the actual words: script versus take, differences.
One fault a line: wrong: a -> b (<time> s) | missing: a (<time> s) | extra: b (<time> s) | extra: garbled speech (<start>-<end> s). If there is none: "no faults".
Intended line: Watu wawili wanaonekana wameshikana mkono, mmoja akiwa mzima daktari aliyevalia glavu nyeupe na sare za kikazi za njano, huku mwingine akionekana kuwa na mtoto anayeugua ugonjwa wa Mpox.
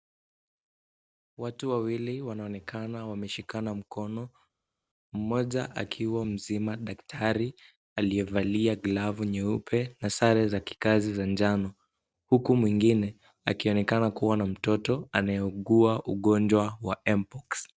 no faults